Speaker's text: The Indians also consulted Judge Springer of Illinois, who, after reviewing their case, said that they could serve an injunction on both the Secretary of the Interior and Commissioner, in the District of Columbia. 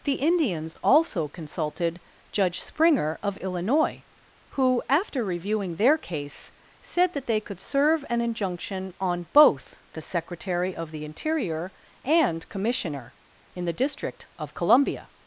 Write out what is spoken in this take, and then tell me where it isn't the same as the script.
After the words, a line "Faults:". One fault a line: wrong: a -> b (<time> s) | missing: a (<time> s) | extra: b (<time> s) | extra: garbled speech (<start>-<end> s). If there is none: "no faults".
The Indians also consulted Judge Springer of Illinois, who, after reviewing their case, said that they could serve an injunction on both the Secretary of the Interior and Commissioner, in the District of Columbia.
Faults:
no faults